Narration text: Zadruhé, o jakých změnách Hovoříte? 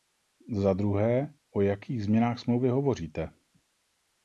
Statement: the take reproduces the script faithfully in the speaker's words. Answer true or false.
false